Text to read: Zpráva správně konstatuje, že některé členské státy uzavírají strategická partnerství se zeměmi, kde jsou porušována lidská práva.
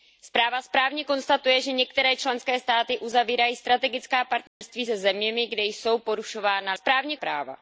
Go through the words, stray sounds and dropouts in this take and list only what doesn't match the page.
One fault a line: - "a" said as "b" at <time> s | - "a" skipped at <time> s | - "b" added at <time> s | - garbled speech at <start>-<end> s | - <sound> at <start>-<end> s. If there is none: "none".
- dropout at 4.5-4.6 s
- "lidská" said as "správně" at 6.7 s